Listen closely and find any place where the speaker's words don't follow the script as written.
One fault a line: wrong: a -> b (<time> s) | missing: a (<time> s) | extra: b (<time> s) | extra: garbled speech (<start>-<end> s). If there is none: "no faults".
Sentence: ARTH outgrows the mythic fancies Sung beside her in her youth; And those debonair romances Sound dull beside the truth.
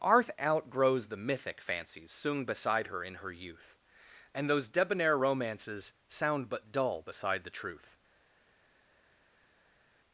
extra: but (6.5 s)